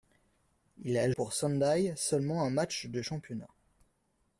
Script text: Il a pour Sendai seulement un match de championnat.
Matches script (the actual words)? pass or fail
pass